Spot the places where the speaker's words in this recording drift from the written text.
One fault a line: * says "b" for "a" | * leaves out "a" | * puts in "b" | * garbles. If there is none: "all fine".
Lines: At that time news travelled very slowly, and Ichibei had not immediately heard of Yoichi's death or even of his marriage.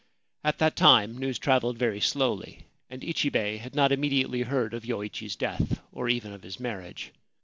all fine